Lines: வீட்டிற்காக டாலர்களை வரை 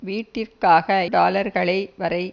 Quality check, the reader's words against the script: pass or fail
pass